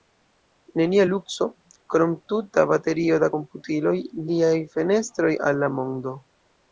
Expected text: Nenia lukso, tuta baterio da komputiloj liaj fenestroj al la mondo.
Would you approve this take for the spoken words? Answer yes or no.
no